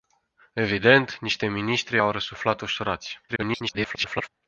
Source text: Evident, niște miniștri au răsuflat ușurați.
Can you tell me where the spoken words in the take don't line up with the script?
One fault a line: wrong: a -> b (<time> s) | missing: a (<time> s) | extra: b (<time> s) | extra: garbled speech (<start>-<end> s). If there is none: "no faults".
extra: garbled speech (3.3-4.3 s)